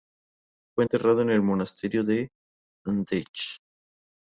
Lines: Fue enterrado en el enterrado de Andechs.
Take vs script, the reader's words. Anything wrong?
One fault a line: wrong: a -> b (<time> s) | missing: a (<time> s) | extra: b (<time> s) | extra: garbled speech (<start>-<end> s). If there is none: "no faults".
wrong: enterrado -> monasterio (1.4 s)